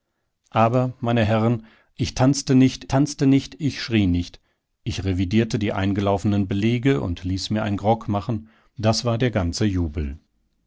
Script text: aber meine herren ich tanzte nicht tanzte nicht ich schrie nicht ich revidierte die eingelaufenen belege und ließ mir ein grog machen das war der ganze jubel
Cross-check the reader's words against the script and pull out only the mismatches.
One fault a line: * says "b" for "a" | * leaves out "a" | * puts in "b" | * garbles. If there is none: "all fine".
all fine